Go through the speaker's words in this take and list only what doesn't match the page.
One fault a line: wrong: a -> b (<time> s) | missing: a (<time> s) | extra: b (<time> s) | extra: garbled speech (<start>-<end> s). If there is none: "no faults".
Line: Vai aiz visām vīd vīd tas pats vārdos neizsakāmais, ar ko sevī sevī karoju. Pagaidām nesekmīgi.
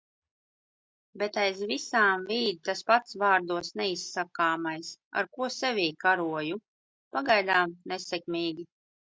wrong: Vai -> Bet (1.2 s)
missing: vīd (2.6 s)
missing: sevī (5.9 s)